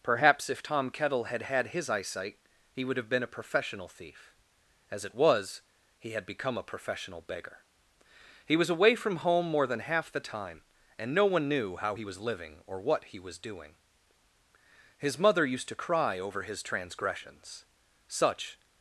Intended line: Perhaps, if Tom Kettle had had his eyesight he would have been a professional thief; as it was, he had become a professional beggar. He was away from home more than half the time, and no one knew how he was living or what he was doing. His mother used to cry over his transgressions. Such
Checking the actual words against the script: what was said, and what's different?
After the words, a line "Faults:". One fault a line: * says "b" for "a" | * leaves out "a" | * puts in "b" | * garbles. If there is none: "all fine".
Perhaps, if Tom Kettle had had his eyesight he would have been a professional thief; as it was, he had become a professional beggar. He was away from home more than half the time, and no one knew how he was living or what he was doing. His mother used to cry over his transgressions. Such
Faults:
all fine